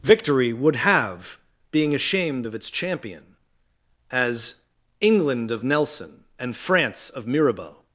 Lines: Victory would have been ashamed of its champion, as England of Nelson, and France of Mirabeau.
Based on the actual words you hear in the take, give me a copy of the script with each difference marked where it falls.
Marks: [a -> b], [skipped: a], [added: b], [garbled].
Victory would have [been -> being] ashamed of its champion, as England of Nelson, and France of Mirabeau.